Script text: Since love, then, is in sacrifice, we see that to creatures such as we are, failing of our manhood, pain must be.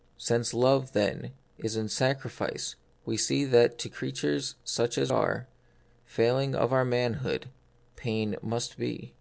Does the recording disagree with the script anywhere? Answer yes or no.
yes